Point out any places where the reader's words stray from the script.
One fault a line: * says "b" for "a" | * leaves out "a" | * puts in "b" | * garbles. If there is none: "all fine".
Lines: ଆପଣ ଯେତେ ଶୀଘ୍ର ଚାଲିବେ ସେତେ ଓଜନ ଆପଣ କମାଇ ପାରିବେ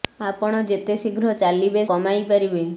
* leaves out "ସେତେ ଓଜନ ଆପଣ"